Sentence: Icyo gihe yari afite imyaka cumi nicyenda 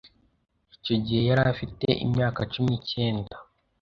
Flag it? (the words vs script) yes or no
no